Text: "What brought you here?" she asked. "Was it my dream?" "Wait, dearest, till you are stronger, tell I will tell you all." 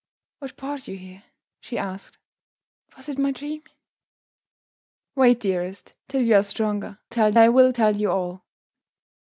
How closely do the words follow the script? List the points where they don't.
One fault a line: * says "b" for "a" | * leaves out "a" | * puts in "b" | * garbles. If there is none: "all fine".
all fine